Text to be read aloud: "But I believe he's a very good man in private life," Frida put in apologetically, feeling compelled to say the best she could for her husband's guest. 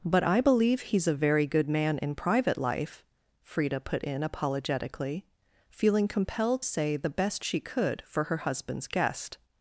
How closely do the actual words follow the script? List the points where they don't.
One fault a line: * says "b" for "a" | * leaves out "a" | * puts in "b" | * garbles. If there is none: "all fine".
* leaves out "to"